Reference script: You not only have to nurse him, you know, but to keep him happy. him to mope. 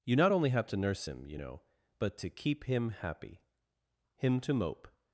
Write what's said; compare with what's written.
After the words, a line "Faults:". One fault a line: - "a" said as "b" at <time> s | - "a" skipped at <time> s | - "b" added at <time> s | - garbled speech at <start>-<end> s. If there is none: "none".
You not only have to nurse him, you know, but to keep him happy. him to mope.
Faults:
none